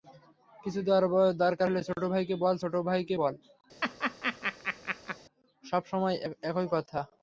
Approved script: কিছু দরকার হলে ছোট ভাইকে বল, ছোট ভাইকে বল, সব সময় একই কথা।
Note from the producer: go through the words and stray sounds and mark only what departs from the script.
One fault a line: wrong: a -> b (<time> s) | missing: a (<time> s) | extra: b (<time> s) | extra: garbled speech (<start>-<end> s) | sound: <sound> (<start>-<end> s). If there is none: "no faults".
sound: laugh (3.8-5.2 s)